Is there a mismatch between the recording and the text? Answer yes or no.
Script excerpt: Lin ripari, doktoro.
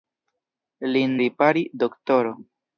no